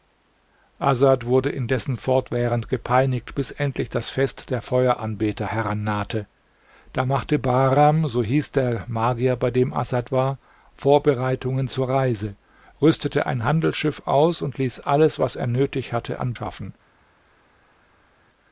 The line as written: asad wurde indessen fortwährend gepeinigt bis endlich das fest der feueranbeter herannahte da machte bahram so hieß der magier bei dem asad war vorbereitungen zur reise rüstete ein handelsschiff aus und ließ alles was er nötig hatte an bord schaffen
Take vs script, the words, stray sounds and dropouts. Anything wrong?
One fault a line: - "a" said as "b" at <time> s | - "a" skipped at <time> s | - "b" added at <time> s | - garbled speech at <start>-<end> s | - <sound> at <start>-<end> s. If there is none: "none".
- "bord" skipped at 16.4 s